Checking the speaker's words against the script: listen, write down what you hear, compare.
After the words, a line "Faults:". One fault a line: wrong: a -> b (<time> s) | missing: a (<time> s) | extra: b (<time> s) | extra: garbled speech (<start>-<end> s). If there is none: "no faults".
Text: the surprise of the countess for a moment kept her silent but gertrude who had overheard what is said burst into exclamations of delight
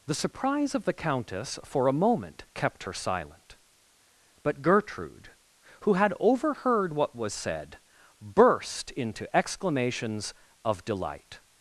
the surprise of the countess for a moment kept her silent but gertrude who had overheard what was said burst into exclamations of delight
Faults:
wrong: is -> was (7.1 s)